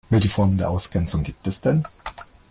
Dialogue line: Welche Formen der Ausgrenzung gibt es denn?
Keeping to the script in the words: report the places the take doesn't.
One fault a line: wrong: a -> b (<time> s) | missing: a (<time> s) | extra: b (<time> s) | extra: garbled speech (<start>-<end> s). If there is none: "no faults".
no faults